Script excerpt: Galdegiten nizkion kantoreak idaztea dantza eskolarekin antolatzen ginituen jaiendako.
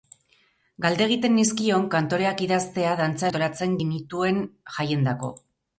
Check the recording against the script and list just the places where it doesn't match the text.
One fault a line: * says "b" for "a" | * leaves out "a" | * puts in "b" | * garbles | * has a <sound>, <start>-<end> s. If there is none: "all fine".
* leaves out "eskolarekin"